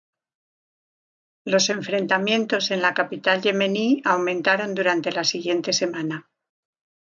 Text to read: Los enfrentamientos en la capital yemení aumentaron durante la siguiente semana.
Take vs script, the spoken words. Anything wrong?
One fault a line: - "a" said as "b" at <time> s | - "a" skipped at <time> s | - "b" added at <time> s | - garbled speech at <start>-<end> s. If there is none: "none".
none